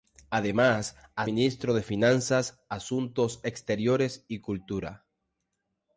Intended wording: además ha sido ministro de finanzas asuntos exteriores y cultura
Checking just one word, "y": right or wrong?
right